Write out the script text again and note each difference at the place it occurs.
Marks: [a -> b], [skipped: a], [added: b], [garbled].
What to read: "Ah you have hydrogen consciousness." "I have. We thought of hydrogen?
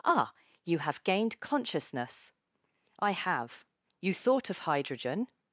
"Ah you have [hydrogen -> gained] consciousness." "I have. [We -> You] thought of hydrogen?